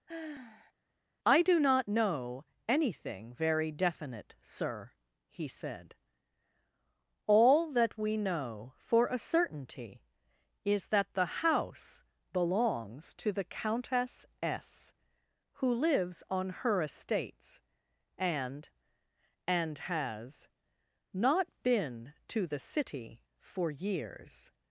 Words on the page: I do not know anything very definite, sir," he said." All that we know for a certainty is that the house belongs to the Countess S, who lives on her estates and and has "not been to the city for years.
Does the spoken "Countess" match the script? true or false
true